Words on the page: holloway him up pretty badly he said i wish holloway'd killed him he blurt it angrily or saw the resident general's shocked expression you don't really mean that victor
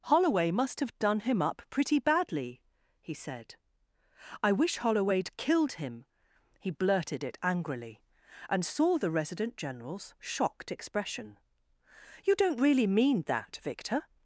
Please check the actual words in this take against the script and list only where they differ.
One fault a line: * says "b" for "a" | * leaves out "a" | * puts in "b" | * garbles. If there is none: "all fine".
* puts in "must have done"
* says "blurted" for "blurt"
* says "and" for "or"